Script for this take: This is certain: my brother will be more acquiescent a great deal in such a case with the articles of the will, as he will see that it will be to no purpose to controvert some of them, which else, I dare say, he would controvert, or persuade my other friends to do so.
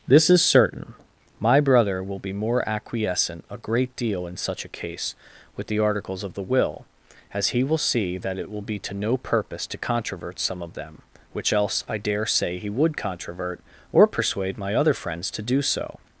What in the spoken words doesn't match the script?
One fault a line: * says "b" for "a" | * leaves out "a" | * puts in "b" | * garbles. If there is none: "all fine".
all fine